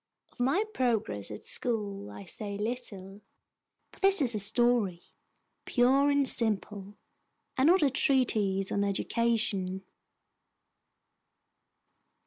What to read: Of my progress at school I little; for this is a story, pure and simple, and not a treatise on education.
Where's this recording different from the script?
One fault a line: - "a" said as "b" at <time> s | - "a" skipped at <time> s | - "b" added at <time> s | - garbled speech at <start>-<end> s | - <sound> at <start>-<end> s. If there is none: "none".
- "say" added at 2.2 s